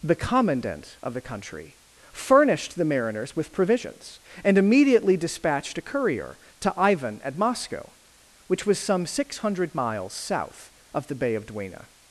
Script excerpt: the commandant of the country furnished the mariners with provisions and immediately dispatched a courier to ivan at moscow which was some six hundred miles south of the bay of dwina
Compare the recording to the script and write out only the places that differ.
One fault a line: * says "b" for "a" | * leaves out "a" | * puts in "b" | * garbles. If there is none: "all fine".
all fine